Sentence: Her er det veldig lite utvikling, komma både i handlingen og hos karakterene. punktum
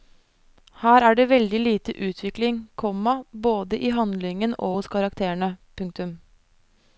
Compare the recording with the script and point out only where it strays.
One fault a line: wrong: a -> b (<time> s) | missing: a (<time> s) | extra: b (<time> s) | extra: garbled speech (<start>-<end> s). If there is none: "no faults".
no faults